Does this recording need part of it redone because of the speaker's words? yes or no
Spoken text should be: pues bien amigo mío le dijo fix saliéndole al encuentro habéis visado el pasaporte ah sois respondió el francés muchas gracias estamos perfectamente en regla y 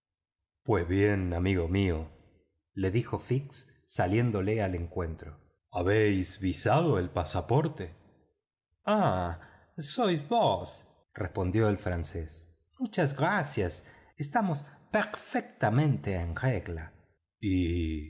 yes